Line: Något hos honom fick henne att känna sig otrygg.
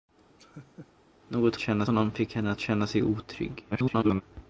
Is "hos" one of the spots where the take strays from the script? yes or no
yes